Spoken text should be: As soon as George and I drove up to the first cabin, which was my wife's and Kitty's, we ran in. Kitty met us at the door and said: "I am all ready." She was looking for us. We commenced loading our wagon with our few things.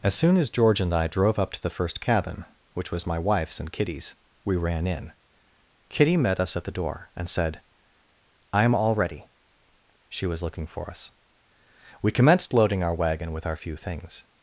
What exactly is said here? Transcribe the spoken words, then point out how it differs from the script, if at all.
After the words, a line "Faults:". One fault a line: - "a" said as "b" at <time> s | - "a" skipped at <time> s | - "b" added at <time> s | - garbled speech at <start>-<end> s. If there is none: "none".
As soon as George and I drove up to the first cabin, which was my wife's and Kitty's, we ran in. Kitty met us at the door and said: "I am all ready." She was looking for us. We commenced loading our wagon with our few things.
Faults:
none